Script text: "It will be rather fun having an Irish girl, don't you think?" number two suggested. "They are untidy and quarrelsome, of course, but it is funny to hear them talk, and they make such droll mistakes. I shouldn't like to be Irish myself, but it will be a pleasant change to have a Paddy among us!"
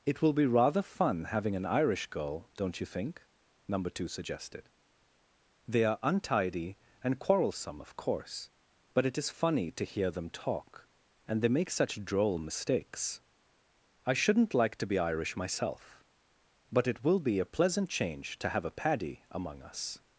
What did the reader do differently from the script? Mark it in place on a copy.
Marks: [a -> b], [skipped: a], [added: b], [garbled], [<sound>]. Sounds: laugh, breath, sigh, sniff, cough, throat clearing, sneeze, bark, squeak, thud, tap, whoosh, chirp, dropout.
"It will be rather fun having an Irish girl, don't you think?" number two suggested. "They are untidy and quarrelsome, of course, but it is funny to hear them talk, and they make such droll mistakes. I shouldn't like to be Irish myself, but it will be a pleasant change to have a Paddy among us!"